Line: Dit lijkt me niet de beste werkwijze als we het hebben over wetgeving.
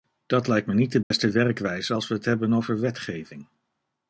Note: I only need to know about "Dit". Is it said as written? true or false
false